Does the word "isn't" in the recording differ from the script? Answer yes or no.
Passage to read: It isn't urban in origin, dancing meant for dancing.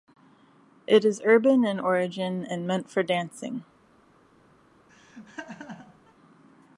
yes